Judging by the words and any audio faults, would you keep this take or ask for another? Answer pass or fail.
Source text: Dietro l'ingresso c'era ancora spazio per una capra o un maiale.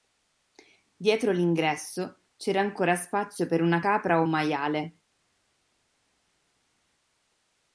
pass